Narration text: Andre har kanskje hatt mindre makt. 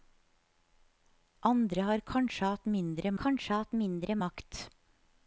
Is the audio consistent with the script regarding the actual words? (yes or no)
no